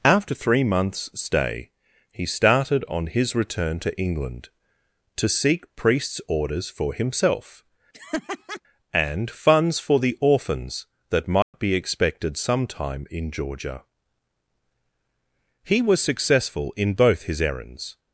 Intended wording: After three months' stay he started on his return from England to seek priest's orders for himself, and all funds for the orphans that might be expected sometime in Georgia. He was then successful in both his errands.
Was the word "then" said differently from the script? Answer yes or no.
yes